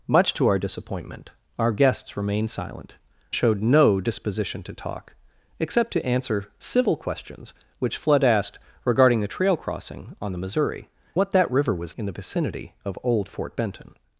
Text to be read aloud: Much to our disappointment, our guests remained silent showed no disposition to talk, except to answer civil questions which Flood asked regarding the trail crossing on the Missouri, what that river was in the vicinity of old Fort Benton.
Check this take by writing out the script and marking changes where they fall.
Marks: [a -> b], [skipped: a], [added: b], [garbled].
Much to our disappointment, our guests remained silent showed no disposition to talk, except to answer civil questions which Flood asked regarding the trail crossing on the Missouri, what that river was in the vicinity of old Fort Benton.